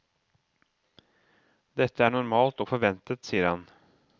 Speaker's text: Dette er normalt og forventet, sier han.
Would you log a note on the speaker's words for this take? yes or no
no